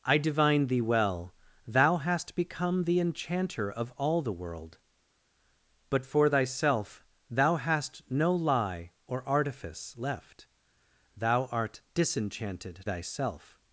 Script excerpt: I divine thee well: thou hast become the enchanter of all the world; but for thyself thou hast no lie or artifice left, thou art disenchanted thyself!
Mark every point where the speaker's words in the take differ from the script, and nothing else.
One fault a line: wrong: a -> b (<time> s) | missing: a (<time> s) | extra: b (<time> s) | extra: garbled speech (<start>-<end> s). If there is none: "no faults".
no faults